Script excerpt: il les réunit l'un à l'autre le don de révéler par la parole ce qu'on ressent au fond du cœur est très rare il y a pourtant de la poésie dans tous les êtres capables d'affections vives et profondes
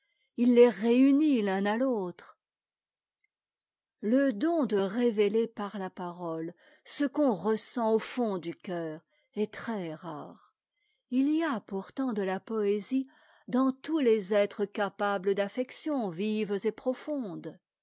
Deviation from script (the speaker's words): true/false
false